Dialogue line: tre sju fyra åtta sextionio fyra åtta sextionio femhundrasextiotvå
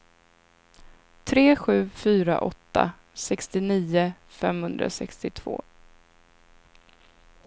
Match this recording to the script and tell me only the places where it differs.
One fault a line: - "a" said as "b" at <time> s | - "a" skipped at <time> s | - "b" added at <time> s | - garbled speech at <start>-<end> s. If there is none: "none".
- "fyra åtta sextionio" skipped at 4.1 s